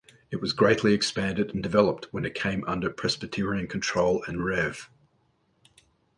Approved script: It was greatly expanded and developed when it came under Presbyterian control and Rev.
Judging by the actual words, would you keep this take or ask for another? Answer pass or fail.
pass